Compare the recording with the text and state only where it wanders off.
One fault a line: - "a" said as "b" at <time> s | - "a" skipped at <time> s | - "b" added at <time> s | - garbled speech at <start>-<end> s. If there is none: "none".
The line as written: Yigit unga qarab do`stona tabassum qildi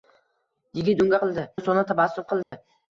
- "qarab" said as "qildi" at 1.2 s